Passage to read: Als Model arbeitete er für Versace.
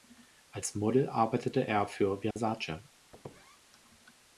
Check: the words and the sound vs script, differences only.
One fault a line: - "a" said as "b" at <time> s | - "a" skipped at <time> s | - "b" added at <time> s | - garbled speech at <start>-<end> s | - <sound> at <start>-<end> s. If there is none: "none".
- dropout at 2.3-2.4 s
- squeak at 3.1-3.6 s